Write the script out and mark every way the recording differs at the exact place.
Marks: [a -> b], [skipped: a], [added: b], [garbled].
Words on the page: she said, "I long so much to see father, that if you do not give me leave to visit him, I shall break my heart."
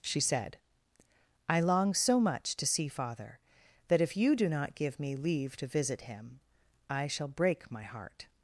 she said, "I long so much to see father, that if you do not give me leave to visit him, I shall break my heart."